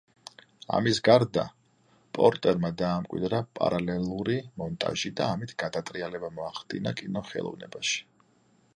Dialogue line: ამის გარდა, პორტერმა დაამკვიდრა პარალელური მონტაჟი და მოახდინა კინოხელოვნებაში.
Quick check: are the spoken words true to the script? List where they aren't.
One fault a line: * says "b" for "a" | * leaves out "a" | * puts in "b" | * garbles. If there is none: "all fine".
* puts in "ამით გადატრიალება"